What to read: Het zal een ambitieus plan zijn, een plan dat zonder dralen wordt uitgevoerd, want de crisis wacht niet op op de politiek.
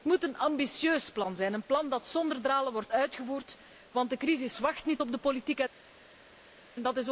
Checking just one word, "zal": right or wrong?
wrong